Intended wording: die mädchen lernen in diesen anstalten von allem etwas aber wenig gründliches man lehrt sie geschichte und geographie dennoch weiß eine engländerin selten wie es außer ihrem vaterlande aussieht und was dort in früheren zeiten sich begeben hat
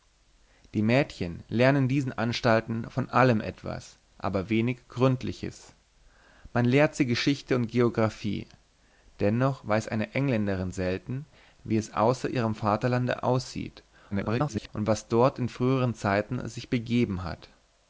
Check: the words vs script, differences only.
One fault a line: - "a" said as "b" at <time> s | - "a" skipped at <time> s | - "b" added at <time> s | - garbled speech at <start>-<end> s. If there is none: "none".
- garbled speech at 14.1-14.7 s